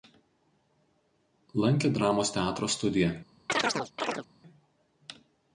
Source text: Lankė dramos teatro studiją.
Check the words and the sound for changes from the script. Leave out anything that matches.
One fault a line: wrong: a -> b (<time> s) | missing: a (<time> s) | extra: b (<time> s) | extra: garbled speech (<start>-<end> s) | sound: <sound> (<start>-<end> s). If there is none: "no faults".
sound: chirp (3.5-4.3 s)